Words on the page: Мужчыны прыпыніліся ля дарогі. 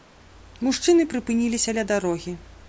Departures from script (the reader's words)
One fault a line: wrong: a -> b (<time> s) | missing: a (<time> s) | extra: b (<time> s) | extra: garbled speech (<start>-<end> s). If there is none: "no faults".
no faults